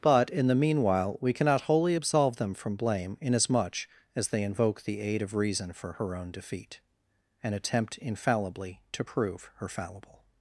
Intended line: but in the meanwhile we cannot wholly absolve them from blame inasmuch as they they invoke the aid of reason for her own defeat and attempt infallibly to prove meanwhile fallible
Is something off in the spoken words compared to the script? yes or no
yes